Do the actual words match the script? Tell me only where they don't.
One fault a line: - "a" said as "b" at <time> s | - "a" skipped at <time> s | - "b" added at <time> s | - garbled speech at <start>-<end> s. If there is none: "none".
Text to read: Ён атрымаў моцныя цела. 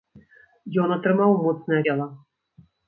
none